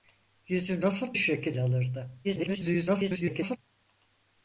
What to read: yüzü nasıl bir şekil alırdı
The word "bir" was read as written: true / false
false